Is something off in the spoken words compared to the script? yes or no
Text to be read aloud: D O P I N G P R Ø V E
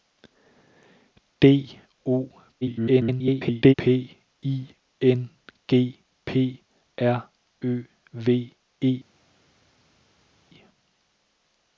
yes